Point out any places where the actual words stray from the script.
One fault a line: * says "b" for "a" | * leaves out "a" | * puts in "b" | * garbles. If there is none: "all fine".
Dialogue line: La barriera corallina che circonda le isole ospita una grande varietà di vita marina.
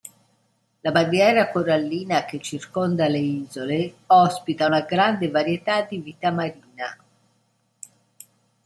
all fine